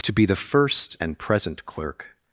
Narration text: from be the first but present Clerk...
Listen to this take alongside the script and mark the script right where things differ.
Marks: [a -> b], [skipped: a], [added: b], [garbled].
[from -> to] be the first [but -> and] present Clerk...